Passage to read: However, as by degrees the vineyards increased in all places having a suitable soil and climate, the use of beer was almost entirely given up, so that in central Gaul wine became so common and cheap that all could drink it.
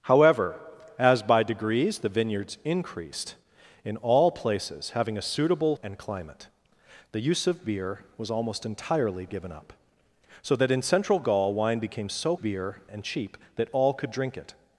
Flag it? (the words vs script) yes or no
yes